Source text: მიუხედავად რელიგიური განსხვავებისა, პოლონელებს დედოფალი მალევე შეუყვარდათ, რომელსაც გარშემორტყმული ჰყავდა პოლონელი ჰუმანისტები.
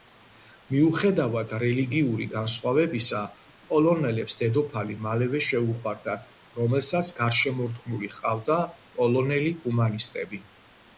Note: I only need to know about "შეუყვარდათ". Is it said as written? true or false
true